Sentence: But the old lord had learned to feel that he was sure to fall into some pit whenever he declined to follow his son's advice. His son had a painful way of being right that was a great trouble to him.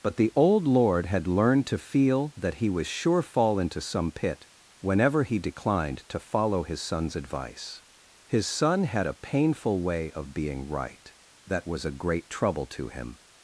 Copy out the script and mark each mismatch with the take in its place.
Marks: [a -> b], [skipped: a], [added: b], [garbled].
But the old lord had learned to feel that he was sure [skipped: to] fall into some pit whenever he declined to follow his son's advice. His son had a painful way of being right that was a great trouble to him.